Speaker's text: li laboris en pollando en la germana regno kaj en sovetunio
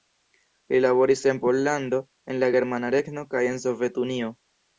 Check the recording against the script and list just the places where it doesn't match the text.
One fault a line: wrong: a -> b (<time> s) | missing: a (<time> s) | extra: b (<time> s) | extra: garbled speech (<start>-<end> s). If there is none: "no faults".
no faults